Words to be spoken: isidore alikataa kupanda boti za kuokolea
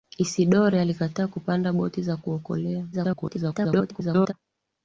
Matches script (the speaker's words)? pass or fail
fail